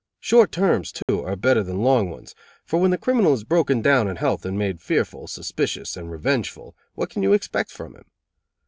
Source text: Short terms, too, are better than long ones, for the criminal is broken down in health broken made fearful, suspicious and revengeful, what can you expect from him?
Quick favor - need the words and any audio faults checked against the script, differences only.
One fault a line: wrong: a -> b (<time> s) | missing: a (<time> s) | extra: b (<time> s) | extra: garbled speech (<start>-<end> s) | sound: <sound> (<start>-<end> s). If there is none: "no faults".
sound: dropout (1.0-1.1 s)
extra: when (2.8 s)
wrong: broken -> and (4.4 s)